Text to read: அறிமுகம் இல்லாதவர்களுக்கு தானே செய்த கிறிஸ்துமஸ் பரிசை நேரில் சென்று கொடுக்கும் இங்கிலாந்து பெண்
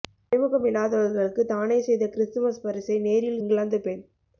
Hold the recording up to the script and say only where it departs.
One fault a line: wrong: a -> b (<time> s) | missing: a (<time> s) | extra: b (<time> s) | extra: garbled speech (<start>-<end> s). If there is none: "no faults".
missing: சென்று கொடுக்கும் (3.4 s)